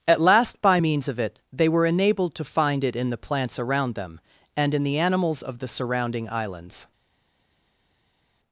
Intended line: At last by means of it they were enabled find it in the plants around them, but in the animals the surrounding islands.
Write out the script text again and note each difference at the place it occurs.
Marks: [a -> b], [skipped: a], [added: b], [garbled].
At last by means of it they were enabled [added: to] find it in the plants around them, [but -> and] in the animals [added: of] the surrounding islands.